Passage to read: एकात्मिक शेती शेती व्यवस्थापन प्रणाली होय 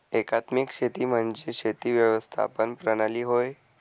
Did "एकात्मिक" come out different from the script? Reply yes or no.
no